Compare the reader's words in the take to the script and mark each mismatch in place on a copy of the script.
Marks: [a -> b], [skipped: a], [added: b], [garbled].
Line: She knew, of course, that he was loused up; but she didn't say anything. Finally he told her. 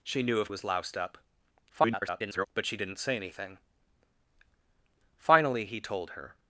She knew, of [skipped: course, that he] was loused up; [garbled] but she didn't say anything. Finally he told her.